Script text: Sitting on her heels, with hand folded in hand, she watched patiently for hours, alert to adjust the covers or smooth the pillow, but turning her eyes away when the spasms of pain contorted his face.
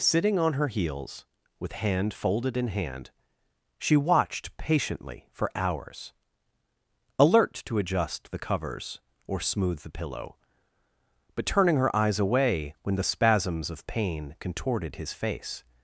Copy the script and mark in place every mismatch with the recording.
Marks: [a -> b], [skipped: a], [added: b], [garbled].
Sitting on her heels, with hand folded in hand, she watched patiently for hours, alert to adjust the covers or smooth the pillow, but turning her eyes away when the spasms of pain contorted his face.